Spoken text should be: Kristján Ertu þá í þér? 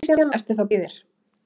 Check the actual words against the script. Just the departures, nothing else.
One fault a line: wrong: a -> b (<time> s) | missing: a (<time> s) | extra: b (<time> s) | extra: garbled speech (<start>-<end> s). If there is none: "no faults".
no faults